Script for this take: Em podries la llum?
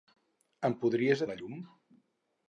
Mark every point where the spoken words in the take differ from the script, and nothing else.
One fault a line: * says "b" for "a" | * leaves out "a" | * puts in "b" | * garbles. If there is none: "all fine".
all fine